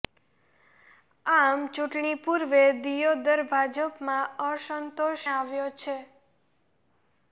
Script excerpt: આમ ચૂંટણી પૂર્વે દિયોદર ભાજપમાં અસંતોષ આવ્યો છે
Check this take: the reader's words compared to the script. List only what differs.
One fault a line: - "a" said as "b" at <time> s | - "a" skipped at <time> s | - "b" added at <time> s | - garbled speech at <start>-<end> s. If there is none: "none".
none